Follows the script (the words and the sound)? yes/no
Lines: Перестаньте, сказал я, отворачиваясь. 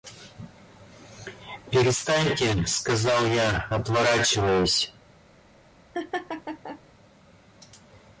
no